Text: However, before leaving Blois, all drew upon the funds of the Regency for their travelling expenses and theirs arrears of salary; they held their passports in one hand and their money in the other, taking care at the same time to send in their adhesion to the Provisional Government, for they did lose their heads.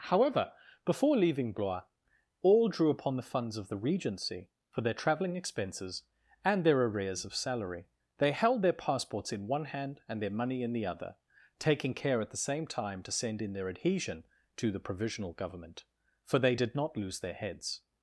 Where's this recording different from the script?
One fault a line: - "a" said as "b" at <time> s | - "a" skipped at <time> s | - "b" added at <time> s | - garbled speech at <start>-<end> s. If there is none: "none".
- "theirs" said as "their" at 6.7 s
- "not" added at 16.8 s